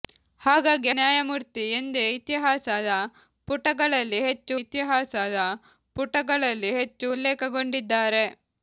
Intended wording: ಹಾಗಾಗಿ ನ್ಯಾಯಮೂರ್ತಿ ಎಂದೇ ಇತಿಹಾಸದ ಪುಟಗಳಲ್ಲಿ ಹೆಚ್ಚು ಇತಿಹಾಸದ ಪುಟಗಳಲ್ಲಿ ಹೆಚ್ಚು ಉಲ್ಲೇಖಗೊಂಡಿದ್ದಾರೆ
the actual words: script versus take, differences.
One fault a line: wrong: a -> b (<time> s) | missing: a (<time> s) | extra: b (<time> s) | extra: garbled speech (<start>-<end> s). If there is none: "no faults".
no faults